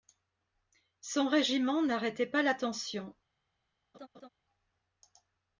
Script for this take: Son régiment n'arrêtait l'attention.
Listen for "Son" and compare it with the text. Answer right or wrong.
right